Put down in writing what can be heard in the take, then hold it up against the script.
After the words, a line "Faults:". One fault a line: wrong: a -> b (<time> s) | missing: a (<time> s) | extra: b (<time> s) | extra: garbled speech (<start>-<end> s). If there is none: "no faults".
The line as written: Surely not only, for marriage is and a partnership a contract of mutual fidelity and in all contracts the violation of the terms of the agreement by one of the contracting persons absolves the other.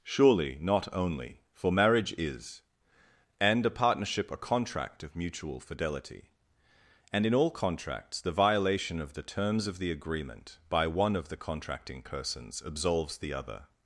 Surely not only, for marriage is and a partnership a contract of mutual fidelity and in all contracts the violation of the terms of the agreement by one of the contracting persons absolves the other.
Faults:
no faults